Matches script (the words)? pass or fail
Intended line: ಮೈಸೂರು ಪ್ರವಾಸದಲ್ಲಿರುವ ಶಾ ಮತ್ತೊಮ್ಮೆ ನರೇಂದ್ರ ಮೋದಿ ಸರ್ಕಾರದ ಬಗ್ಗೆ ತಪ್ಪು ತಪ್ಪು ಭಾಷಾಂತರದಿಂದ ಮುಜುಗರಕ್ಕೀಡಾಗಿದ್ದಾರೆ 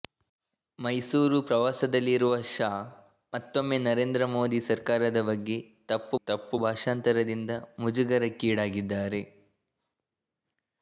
pass